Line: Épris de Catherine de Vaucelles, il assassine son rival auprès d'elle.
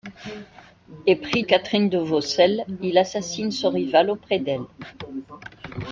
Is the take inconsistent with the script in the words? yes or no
yes